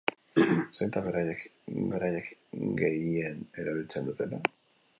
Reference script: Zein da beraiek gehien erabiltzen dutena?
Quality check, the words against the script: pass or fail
fail